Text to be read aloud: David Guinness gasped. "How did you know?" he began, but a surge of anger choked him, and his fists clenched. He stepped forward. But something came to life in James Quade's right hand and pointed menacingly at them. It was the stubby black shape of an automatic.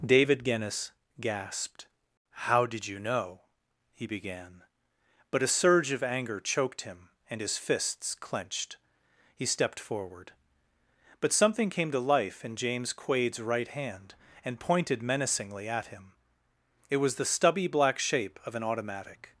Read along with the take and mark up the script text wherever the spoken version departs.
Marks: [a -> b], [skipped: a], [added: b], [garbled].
David Guinness gasped. "How did you know?" he began, but a surge of anger choked him, and his fists clenched. He stepped forward. But something came to life in James Quade's right hand and pointed menacingly at [them. -> him] It was the stubby black shape of an automatic.